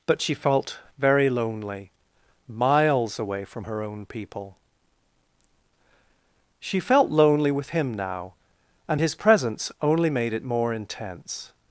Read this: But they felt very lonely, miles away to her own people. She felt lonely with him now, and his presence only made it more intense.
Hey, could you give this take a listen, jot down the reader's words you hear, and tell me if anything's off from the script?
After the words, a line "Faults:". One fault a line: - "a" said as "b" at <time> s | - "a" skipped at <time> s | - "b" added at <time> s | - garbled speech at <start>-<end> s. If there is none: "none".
But she felt very lonely, miles away from her own people. She felt lonely with him now, and his presence only made it more intense.
Faults:
- "they" said as "she" at 0.2 s
- "to" said as "from" at 3.5 s